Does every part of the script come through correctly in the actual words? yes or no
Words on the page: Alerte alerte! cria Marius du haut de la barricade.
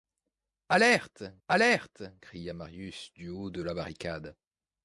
yes